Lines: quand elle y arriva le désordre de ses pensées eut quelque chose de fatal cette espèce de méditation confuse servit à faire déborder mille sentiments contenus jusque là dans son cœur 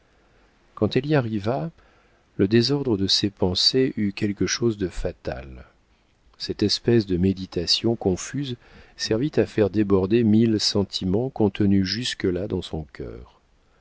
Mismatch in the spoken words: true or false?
false